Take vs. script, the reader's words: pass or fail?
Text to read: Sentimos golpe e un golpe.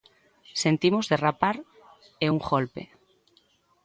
fail